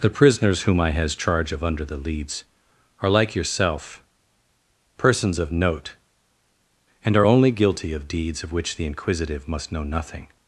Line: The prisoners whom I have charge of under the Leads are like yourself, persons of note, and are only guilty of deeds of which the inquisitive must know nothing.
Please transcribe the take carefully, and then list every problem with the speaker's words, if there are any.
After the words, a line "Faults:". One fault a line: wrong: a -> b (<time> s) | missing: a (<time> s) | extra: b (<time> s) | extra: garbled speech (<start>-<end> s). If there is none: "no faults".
The prisoners whom I has charge of under the Leads are like yourself, persons of note, and are only guilty of deeds of which the inquisitive must know nothing.
Faults:
wrong: have -> has (0.9 s)